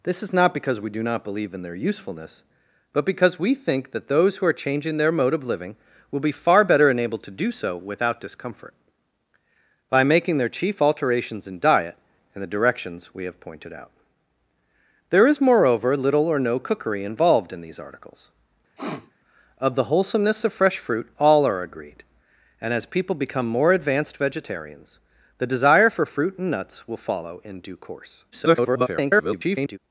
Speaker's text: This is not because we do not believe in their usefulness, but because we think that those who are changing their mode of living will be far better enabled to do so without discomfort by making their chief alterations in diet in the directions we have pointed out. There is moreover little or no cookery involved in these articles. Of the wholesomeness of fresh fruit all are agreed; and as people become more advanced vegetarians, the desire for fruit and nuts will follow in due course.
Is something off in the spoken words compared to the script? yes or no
yes